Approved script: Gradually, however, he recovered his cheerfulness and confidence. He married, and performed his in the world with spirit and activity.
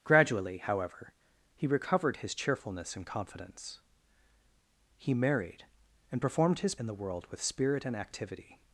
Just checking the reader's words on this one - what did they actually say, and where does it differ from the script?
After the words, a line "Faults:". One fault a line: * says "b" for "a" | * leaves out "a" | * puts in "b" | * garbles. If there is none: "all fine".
Gradually, however, he recovered his cheerfulness and confidence. He married, and performed his in the world with spirit and activity.
Faults:
all fine